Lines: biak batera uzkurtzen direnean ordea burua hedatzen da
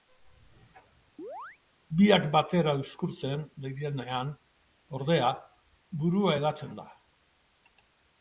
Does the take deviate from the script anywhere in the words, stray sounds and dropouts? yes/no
yes